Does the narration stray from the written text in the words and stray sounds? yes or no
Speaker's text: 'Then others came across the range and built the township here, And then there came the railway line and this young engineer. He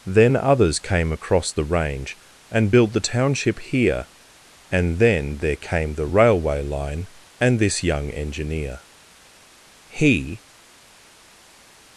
no